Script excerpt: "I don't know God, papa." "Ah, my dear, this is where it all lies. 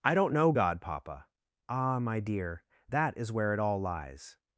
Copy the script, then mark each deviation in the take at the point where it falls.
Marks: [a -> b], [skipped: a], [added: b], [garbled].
"I don't know God, papa." "Ah, my dear, [this -> that] is where it all lies.